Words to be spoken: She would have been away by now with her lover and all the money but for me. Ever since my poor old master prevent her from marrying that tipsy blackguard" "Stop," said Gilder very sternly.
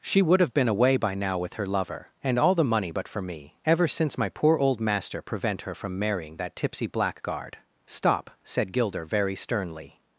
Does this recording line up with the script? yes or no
yes